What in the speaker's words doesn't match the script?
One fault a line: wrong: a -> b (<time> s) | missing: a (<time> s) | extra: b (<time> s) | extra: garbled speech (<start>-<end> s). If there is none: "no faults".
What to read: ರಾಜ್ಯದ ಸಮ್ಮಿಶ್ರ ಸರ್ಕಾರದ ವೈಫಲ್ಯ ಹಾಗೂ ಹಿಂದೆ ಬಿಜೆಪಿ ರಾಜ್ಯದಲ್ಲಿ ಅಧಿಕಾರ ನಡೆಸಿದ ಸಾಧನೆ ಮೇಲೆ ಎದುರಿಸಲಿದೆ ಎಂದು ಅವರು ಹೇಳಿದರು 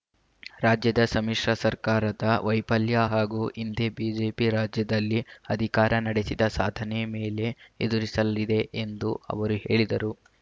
no faults